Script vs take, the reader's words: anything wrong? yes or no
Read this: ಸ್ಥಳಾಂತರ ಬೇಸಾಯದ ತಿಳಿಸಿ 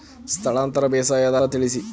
no